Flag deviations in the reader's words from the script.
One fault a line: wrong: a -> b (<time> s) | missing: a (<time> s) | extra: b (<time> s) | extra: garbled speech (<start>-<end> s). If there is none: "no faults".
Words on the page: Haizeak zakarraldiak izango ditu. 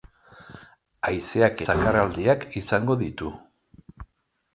no faults